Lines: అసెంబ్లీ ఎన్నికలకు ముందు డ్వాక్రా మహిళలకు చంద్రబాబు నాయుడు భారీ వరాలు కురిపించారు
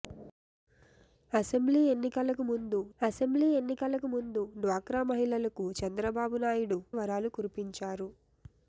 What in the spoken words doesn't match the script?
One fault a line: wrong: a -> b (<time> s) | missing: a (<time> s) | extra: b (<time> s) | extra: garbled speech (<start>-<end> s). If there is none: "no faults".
extra: అసెంబ్లీ ఎన్నికలకు ముందు (3.0 s)
missing: భారీ (6.8 s)